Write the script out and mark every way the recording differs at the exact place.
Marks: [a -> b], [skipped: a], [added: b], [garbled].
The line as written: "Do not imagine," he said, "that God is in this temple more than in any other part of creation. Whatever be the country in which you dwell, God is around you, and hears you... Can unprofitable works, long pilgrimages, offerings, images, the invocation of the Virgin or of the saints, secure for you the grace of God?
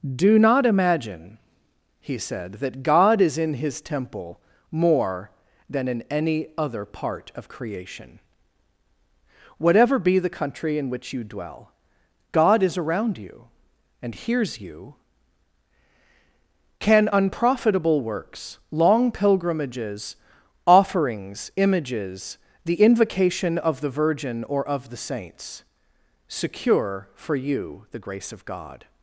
"Do not imagine," he said, "that God is in [this -> his] temple more than in any other part of creation. Whatever be the country in which you dwell, God is around you, and hears you... Can unprofitable works, long pilgrimages, offerings, images, the invocation of the Virgin or of the saints, secure for you the grace of God?